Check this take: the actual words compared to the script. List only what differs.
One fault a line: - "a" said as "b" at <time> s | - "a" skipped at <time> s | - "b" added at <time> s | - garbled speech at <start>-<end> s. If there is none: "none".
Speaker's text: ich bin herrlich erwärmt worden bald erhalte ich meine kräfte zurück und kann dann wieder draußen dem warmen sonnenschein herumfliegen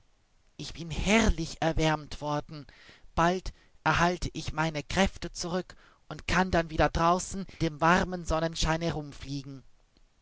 none